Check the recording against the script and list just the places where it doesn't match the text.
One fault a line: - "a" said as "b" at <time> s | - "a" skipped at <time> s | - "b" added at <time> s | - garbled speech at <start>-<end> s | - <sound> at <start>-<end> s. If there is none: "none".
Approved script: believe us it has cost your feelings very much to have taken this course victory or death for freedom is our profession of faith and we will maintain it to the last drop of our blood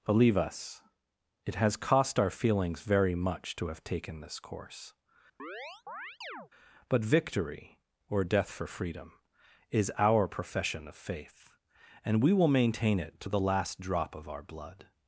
- "your" said as "our" at 2.2 s
- chirp at 5.4-6.5 s
- "but" added at 6.9 s